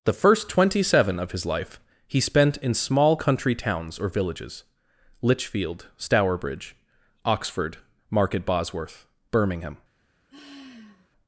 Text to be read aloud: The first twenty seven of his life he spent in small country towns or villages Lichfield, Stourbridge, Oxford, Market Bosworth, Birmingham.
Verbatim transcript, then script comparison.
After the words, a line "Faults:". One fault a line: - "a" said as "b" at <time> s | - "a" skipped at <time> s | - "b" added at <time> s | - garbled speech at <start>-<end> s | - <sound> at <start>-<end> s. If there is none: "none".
The first twenty seven of his life he spent in small country towns or villages Lichfield, Stourbridge, Oxford, Market Bosworth, Birmingham.
Faults:
- sigh at 10.3-11.1 s